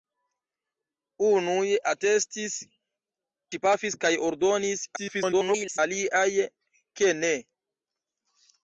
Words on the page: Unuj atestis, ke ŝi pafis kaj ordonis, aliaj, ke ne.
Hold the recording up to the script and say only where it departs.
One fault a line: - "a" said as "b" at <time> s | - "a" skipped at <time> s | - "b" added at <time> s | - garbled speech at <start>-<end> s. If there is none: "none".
- "ke" skipped at 2.6 s
- garbled speech at 5.0-5.8 s